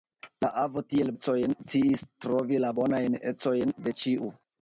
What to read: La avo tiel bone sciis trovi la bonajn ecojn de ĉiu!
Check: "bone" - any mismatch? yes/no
yes